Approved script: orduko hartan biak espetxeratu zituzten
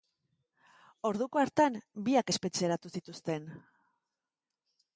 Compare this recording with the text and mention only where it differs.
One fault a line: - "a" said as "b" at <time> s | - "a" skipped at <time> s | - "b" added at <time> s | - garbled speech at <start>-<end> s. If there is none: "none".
none